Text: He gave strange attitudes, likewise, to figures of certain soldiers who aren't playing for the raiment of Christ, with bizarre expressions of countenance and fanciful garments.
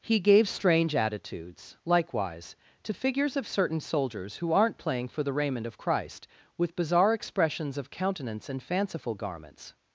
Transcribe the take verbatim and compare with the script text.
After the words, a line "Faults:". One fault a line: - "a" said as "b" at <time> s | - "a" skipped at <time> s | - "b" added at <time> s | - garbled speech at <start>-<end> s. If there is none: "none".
He gave strange attitudes, likewise, to figures of certain soldiers who aren't playing for the raiment of Christ, with bizarre expressions of countenance and fanciful garments.
Faults:
none